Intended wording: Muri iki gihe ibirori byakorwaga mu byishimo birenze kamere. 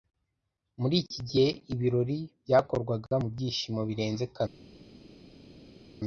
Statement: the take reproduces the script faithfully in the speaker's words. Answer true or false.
true